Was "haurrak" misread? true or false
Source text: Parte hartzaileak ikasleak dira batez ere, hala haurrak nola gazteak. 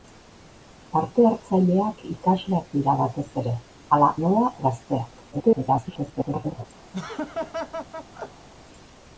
true